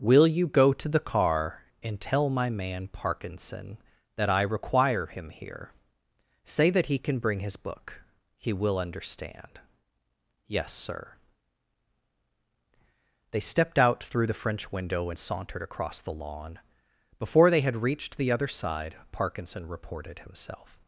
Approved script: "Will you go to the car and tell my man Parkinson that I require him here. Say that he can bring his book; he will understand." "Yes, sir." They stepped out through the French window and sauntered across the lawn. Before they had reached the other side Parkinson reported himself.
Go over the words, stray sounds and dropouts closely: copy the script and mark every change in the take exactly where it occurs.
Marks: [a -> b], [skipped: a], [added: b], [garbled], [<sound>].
"Will you go to the car and tell my man Parkinson that I require him here. Say that he can bring his book; he will understand." "Yes, sir." They stepped out through the French window and sauntered across the lawn. Before they had reached the other side Parkinson reported himself.